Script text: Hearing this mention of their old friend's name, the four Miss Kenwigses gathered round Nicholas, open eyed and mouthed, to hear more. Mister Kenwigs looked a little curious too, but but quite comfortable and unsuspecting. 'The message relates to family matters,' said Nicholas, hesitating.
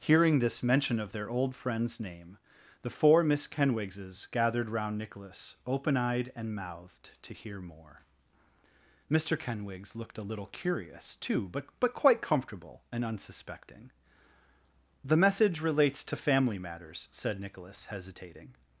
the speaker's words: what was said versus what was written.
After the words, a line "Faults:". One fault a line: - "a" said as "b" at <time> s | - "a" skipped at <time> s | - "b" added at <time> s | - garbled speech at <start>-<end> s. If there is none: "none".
Hearing this mention of their old friend's name, the four Miss Kenwigses gathered round Nicholas, open eyed and mouthed, to hear more. Mister Kenwigs looked a little curious too, but but quite comfortable and unsuspecting. 'The message relates to family matters,' said Nicholas, hesitating.
Faults:
none